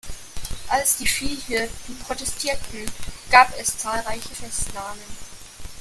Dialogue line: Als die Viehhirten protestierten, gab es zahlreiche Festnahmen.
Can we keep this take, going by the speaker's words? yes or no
yes